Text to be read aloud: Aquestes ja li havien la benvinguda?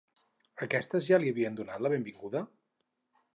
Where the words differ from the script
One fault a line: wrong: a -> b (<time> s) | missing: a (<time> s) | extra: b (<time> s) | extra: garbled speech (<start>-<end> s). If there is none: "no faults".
extra: donat (1.6 s)